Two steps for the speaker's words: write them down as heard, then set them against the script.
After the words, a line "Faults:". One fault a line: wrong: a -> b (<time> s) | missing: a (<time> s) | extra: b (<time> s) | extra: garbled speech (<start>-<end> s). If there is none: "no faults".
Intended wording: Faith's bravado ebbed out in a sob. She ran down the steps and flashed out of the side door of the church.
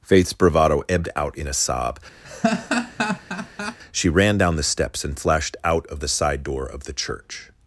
Faith's bravado ebbed out in a sob. She ran down the steps and flashed out of the side door of the church.
Faults:
no faults